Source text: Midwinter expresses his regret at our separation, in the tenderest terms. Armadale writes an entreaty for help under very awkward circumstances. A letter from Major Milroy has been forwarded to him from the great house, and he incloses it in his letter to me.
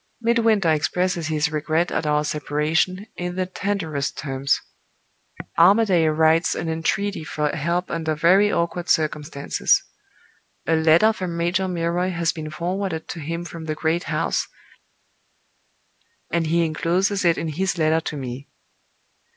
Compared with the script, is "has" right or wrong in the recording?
right